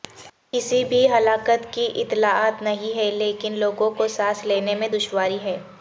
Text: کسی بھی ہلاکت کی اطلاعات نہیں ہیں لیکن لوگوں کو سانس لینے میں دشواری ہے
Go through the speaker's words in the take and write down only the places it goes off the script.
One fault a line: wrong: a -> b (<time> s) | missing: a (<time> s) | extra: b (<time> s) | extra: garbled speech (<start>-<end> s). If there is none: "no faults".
no faults